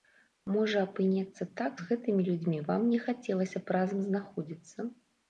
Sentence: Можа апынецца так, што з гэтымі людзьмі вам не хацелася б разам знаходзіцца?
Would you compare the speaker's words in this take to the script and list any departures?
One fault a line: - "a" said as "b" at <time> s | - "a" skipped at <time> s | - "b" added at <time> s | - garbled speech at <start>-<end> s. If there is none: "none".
- "што" skipped at 1.7 s